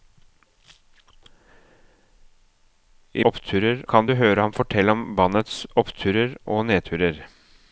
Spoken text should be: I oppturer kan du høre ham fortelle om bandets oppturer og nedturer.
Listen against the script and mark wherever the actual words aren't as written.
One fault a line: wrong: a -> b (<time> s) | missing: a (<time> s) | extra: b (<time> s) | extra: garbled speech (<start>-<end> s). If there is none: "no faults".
no faults